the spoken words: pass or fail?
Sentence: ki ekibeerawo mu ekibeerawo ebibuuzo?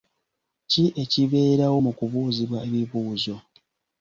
fail